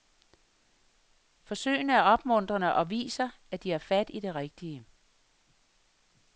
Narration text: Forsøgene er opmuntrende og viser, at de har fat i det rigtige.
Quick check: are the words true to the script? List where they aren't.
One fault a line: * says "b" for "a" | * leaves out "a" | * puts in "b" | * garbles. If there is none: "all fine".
all fine